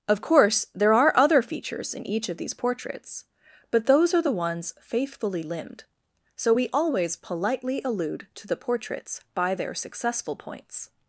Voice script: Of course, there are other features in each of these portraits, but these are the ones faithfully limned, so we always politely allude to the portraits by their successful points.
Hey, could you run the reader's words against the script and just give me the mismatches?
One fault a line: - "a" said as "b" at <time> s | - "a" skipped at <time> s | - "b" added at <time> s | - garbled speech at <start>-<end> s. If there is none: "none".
- "these" said as "those" at 3.9 s